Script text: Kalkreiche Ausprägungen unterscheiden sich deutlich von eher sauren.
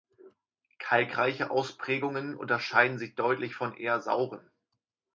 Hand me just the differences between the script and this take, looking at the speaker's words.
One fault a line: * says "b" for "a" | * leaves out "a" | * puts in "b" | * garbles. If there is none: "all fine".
all fine